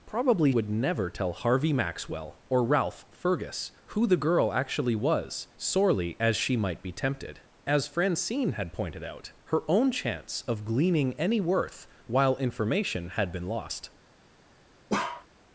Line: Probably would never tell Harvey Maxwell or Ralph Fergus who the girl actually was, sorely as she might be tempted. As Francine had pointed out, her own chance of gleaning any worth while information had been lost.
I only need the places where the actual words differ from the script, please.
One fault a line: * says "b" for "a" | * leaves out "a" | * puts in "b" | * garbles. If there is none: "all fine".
all fine